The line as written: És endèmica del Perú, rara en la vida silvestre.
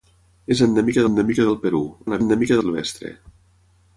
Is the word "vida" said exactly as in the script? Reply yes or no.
no